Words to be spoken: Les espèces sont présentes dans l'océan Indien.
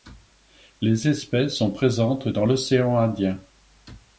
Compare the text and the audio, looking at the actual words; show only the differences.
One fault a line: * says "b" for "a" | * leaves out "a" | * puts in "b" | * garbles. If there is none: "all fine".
all fine